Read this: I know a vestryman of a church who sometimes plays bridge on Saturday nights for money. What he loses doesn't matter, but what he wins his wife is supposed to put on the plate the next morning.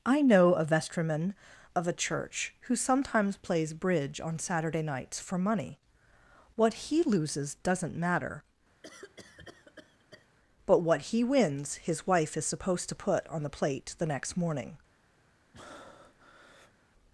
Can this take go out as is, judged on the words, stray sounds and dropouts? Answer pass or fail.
fail